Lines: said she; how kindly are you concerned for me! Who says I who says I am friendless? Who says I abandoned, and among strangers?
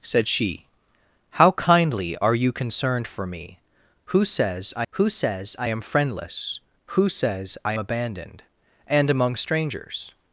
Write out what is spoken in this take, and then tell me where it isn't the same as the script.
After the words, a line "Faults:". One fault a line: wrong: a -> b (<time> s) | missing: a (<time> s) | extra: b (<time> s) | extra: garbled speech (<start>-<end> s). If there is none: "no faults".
said she; how kindly are you concerned for me! Who says I who says I am friendless? Who says I abandoned, and among strangers?
Faults:
no faults